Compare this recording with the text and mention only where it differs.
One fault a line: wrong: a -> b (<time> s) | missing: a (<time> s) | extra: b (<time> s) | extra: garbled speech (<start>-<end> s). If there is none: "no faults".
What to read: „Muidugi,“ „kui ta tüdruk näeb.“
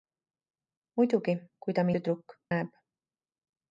no faults